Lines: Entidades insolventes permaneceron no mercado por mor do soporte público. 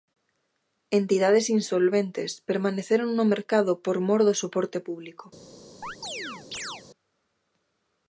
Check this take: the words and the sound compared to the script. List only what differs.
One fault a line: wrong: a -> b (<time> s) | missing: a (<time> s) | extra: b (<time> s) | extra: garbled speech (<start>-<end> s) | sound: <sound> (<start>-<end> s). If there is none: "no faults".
sound: chirp (5.8-6.8 s)